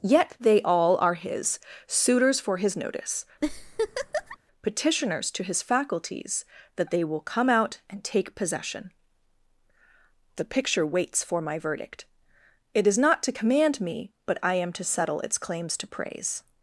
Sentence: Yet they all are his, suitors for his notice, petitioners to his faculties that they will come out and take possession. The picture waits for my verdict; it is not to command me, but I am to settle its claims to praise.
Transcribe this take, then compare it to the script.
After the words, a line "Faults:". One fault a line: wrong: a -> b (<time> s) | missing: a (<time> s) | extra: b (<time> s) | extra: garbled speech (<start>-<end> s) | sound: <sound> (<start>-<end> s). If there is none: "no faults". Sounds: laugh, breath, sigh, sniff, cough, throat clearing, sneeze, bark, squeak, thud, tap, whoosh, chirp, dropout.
Yet they all are his, suitors for his notice, petitioners to his faculties that they will come out and take possession. The picture waits for my verdict; it is not to command me, but I am to settle its claims to praise.
Faults:
sound: laugh (3.4-4.4 s)